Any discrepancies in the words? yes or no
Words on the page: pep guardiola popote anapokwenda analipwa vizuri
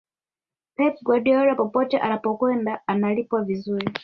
no